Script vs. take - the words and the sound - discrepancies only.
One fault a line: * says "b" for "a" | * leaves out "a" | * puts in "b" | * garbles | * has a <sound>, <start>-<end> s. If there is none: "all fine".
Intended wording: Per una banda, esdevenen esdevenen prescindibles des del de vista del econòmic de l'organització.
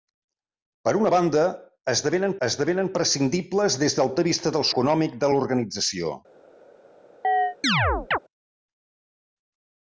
* has a chirp, 7.2-8.2 s